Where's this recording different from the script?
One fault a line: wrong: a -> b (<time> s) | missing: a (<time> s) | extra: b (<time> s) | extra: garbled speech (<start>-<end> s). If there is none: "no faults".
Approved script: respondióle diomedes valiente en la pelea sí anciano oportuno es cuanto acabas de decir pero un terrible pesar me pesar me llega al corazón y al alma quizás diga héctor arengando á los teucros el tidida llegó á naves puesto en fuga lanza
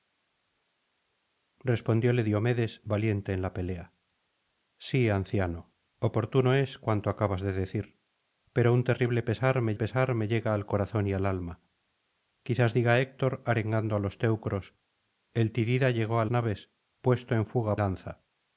no faults